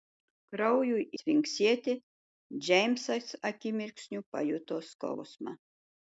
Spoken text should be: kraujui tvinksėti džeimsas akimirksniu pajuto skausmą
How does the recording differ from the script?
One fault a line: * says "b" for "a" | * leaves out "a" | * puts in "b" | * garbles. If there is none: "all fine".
all fine